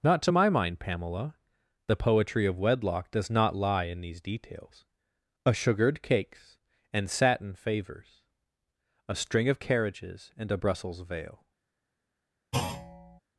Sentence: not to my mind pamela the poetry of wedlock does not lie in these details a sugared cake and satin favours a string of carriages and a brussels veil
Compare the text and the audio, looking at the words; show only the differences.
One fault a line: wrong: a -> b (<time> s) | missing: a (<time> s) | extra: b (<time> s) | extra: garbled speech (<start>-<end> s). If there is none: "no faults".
wrong: cake -> cakes (6.0 s)